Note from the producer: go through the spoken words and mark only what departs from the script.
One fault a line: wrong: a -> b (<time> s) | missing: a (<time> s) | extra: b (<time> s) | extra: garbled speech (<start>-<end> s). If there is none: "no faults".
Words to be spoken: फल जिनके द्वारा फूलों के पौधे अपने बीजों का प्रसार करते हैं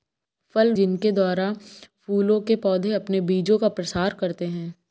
no faults